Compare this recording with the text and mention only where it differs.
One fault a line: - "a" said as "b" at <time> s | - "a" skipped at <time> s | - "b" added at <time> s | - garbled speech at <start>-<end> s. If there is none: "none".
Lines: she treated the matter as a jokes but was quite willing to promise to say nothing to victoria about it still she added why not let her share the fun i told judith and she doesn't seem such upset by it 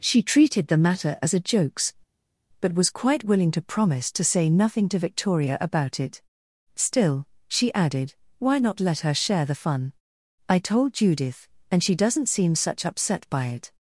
none